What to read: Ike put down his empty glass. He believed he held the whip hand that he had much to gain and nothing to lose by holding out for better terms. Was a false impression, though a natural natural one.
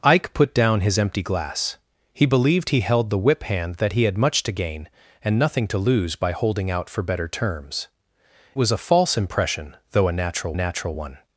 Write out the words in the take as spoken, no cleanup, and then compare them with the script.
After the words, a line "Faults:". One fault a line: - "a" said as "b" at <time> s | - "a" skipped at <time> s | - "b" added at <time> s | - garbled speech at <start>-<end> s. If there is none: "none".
Ike put down his empty glass. He believed he held the whip hand that he had much to gain and nothing to lose by holding out for better terms. Was a false impression, though a natural natural one.
Faults:
none